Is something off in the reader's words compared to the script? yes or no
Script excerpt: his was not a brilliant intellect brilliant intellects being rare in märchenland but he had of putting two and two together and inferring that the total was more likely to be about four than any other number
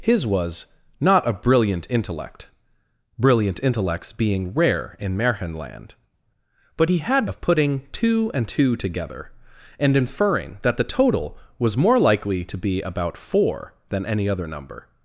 no